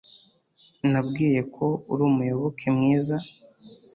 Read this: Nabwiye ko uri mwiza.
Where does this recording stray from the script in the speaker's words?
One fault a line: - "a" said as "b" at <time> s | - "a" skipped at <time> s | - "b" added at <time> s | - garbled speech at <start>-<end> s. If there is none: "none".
- "umuyoboke" added at 2.1 s